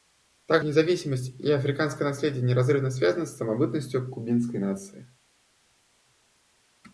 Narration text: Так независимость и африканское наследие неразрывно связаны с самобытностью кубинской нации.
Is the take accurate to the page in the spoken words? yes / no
yes